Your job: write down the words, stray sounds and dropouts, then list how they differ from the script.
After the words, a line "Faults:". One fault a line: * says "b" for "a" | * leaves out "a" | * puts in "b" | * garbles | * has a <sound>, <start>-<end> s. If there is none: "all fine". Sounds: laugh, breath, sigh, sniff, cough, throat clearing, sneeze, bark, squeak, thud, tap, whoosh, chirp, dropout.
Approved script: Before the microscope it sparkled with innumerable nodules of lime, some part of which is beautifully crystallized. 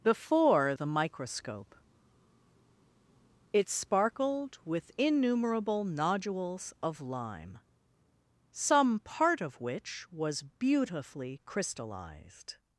Before the microscope it sparkled with innumerable nodules of lime, some part of which was beautifully crystallized.
Faults:
* says "was" for "is"